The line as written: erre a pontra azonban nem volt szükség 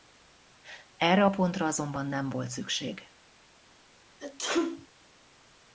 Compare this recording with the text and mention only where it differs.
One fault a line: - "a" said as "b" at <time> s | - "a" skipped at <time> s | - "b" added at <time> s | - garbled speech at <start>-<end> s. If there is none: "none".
none